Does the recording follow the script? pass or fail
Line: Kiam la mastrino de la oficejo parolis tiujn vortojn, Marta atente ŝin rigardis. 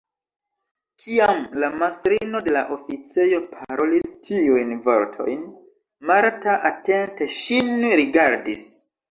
pass